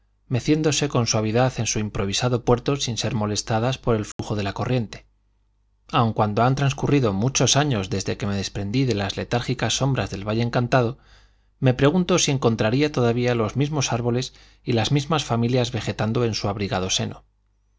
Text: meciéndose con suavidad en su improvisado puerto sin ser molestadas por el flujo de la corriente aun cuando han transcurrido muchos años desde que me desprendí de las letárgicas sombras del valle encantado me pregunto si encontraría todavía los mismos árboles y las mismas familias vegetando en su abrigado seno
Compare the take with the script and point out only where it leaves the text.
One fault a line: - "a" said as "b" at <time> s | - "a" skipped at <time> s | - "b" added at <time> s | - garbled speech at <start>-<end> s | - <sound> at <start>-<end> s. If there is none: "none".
- dropout at 4.1-4.2 s